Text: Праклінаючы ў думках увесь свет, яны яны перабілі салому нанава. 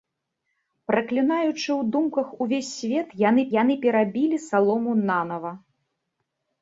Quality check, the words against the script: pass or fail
pass